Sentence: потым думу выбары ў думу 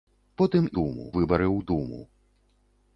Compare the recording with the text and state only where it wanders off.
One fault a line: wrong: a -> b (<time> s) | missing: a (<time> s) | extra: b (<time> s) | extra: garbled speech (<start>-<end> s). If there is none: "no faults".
no faults